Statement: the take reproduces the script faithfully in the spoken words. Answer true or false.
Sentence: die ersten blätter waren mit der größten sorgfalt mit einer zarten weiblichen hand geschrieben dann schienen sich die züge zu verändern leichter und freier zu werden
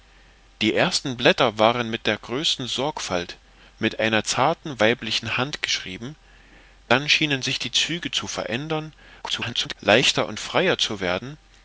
false